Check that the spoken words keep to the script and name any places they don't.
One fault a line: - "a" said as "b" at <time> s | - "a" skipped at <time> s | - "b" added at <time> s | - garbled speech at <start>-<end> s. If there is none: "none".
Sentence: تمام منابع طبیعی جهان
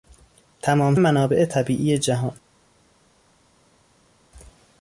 none